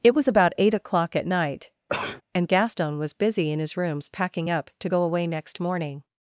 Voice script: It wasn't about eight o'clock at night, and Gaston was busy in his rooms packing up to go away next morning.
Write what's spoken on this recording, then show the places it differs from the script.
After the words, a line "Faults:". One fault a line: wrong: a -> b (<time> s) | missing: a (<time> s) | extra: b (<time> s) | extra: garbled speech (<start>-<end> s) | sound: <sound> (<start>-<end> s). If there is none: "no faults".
It was about eight o'clock at night, and Gaston was busy in his rooms packing up to go away next morning.
Faults:
wrong: wasn't -> was (0.1 s)
sound: sneeze (1.9-2.2 s)